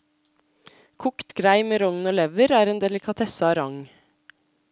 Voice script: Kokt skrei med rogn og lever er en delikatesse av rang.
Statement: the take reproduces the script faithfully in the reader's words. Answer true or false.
true